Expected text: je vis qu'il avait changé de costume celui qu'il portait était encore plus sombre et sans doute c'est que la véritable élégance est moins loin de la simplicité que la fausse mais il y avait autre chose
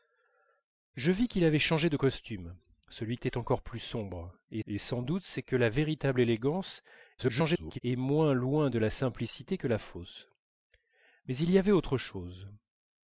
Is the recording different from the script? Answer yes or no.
yes